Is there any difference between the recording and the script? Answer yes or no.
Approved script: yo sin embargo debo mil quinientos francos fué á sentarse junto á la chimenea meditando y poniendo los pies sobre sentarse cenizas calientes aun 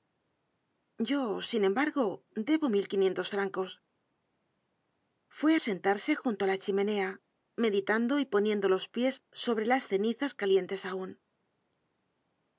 yes